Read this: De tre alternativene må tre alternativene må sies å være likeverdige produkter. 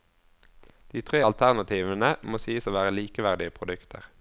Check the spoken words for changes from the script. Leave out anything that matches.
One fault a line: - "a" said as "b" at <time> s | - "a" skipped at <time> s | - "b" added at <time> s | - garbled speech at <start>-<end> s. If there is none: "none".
- "tre alternativene må" skipped at 2.4 s